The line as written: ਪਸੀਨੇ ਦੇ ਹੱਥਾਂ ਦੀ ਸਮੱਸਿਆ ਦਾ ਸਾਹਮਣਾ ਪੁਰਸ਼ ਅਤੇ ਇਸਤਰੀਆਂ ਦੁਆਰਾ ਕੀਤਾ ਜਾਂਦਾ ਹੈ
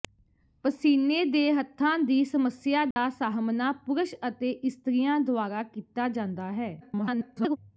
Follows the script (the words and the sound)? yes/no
no